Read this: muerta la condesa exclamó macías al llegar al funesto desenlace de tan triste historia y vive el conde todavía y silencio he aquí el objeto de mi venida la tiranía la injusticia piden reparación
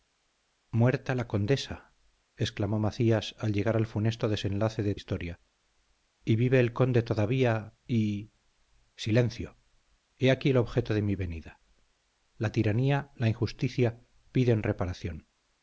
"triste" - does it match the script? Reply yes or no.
no